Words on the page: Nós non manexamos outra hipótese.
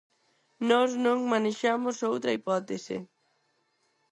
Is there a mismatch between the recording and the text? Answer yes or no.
no